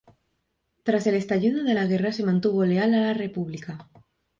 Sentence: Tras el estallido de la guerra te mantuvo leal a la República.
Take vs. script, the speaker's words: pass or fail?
fail